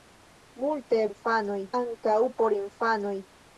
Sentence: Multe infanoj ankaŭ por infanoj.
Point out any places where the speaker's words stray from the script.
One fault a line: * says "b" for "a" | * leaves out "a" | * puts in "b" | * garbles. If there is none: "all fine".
all fine